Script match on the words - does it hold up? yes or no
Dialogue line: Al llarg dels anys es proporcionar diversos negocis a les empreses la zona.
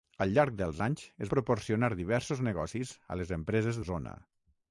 yes